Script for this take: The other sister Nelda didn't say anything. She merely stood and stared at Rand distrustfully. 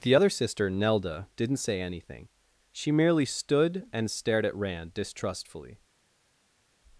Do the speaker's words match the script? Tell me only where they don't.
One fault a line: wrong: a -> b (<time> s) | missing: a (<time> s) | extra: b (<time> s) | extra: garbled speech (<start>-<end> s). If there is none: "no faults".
no faults